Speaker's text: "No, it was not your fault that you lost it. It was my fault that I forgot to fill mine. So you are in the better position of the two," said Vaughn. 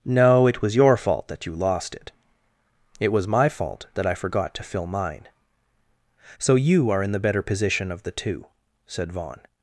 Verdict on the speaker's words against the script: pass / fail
fail